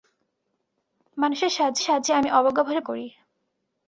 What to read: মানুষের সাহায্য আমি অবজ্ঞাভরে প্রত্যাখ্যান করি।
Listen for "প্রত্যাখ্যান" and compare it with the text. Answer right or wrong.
wrong